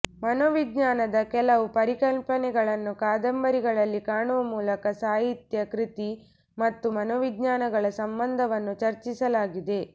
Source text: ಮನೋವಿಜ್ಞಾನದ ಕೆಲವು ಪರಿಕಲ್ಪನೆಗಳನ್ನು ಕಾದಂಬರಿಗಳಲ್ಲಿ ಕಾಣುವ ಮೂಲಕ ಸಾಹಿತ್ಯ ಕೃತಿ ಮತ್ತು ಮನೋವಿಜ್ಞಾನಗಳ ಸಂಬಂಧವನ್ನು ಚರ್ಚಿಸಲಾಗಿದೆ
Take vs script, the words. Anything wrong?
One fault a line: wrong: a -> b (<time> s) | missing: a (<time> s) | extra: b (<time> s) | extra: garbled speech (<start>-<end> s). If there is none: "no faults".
no faults